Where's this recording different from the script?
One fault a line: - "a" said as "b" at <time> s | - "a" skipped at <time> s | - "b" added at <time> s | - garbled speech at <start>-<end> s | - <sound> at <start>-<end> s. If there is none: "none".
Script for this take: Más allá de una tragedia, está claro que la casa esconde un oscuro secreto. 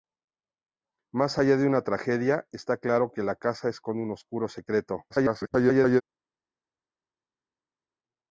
- garbled speech at 5.1-6.0 s